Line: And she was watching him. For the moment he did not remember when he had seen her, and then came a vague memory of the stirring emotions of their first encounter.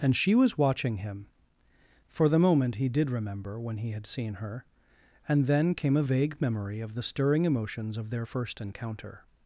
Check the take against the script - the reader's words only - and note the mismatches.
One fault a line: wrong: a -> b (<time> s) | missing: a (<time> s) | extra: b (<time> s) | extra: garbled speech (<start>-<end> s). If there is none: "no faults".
missing: not (3.1 s)